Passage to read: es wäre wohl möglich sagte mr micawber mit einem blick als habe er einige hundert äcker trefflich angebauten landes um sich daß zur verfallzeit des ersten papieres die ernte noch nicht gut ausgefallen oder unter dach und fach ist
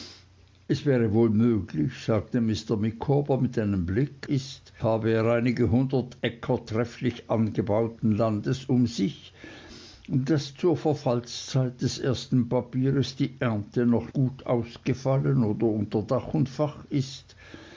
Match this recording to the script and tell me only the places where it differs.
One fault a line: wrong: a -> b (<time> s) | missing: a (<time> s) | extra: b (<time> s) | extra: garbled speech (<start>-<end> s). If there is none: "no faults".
wrong: als -> ist (4.2 s)
missing: nicht (14.1 s)